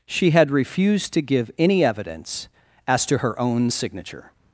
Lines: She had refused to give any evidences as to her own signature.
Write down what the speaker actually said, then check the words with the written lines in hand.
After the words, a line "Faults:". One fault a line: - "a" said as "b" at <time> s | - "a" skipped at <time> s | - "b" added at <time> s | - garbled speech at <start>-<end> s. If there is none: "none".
She had refused to give any evidence as to her own signature.
Faults:
- "evidences" said as "evidence" at 1.8 s